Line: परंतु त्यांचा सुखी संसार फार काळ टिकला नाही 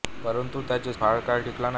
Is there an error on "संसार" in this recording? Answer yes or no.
yes